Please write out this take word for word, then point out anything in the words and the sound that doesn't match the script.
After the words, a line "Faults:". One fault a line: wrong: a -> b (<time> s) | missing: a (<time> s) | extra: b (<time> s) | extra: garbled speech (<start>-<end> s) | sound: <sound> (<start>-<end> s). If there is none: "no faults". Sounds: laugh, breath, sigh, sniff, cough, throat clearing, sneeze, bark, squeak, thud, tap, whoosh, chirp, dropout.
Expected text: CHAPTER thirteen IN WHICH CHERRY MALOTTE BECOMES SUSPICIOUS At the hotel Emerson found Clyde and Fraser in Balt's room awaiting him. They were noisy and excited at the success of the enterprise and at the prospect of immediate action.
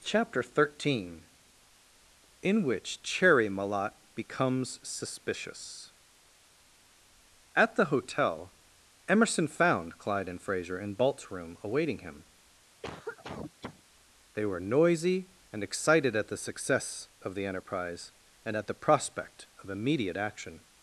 CHAPTER thirteen IN WHICH CHERRY MALOTTE BECOMES SUSPICIOUS At the hotel Emerson found Clyde and Fraser in Balt's room awaiting him. They were noisy and excited at the success of the enterprise and at the prospect of immediate action.
Faults:
sound: cough (12.8-13.8 s)